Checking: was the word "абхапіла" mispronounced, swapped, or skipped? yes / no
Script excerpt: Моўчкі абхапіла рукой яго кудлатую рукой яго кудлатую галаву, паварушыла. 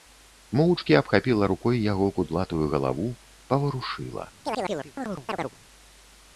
no